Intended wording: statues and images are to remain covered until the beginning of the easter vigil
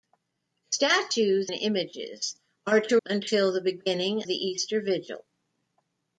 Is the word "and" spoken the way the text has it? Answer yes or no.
no